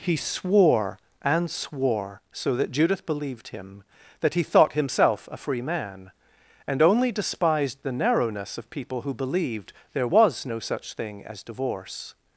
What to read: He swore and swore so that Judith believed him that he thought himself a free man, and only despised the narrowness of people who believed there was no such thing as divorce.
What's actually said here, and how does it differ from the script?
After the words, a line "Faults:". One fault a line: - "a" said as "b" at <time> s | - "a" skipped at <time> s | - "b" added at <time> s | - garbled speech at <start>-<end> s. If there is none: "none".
He swore and swore so that Judith believed him that he thought himself a free man, and only despised the narrowness of people who believed there was no such thing as divorce.
Faults:
none